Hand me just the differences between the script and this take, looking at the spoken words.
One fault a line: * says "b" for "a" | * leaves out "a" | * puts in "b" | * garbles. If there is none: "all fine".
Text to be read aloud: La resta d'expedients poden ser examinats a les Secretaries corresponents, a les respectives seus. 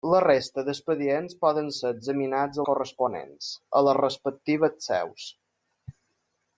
* leaves out "les Secretaries"